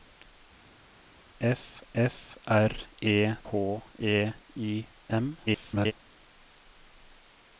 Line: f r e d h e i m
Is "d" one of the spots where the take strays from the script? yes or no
yes